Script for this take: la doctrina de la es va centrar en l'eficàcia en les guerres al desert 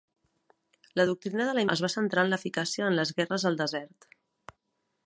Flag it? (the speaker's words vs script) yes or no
no